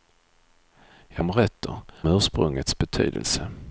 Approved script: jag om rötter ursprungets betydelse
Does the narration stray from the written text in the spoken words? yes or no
no